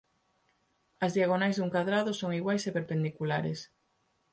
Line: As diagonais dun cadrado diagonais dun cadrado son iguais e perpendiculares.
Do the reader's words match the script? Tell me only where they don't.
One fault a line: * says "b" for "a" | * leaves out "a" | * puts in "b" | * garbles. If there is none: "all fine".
* leaves out "diagonais dun cadrado"